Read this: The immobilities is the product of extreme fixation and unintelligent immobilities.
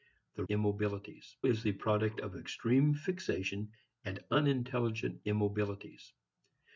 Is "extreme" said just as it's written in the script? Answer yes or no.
yes